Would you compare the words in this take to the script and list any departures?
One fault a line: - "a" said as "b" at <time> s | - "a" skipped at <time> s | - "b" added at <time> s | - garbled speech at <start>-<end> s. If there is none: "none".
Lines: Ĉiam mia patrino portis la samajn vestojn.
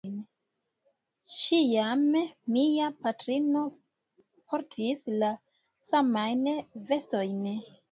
none